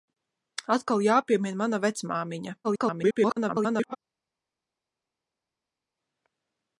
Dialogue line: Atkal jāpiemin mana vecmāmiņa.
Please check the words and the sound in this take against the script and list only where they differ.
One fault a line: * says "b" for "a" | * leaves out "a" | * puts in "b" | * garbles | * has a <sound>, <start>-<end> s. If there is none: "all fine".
* garbles